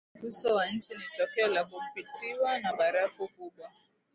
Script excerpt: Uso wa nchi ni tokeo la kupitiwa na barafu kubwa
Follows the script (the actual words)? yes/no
yes